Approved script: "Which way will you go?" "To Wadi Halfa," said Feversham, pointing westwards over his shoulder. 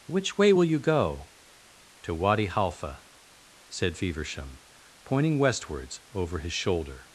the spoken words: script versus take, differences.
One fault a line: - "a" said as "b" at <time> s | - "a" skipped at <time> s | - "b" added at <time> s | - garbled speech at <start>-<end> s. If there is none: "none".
none